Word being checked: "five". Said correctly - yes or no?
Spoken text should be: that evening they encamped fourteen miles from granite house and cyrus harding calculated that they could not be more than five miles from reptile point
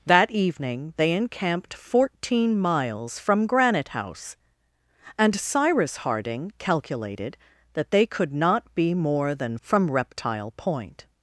no